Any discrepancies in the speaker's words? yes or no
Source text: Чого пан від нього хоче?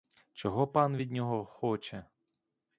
no